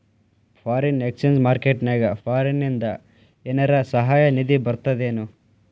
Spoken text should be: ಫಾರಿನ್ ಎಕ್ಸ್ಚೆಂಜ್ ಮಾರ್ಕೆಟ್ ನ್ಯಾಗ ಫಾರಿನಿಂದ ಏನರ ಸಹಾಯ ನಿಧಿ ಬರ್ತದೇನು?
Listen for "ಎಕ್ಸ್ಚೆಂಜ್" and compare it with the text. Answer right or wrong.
right